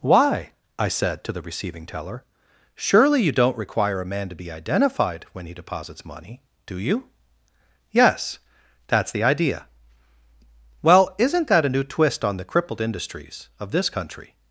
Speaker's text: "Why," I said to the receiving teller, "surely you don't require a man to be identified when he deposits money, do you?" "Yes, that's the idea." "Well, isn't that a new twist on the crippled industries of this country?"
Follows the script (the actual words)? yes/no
yes